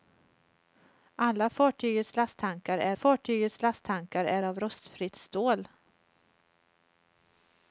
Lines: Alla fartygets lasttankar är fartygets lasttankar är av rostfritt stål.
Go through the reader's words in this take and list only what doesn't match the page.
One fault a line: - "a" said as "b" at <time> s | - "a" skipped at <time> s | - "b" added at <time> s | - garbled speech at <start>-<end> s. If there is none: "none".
none